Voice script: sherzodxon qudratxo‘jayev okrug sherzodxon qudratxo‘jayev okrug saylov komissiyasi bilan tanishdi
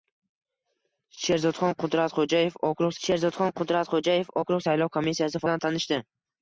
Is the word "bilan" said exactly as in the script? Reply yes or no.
yes